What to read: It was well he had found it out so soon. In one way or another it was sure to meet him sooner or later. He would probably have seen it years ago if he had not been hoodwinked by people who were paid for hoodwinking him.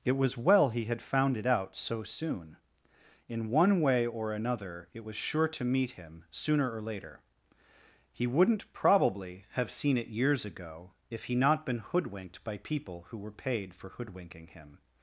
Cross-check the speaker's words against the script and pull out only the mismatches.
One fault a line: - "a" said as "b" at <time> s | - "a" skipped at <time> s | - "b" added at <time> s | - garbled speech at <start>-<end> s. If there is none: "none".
- "would" said as "wouldn't" at 8.3 s
- "had" skipped at 11.3 s